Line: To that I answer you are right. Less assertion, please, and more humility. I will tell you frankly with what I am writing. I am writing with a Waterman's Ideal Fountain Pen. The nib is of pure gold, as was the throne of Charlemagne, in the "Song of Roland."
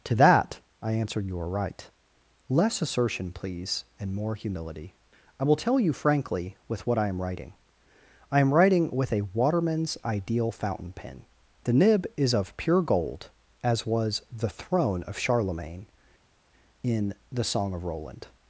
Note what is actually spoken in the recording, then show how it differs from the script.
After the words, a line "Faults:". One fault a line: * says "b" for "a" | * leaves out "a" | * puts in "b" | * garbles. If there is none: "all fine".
To that I answered you are right. Less assertion, please, and more humility. I will tell you frankly with what I am writing. I am writing with a Waterman's Ideal Fountain Pen. The nib is of pure gold, as was the throne of Charlemagne, in the "Song of Roland."
Faults:
* says "answered" for "answer"